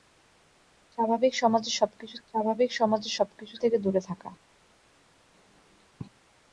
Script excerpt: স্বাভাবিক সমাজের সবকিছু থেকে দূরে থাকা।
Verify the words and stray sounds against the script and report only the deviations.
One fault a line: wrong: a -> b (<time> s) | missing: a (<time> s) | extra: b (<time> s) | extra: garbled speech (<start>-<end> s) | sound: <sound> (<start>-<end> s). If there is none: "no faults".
extra: স্বাভাবিক সমাজের সবকিছু (2.3 s)